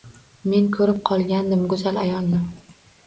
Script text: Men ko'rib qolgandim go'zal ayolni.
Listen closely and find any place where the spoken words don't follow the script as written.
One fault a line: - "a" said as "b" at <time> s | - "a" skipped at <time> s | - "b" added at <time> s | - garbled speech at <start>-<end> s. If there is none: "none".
none